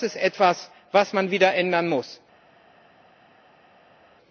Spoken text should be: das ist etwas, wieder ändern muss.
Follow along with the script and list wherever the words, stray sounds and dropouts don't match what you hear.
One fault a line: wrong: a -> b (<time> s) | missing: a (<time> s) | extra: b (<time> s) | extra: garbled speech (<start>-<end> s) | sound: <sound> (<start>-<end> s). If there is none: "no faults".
extra: was man (0.9 s)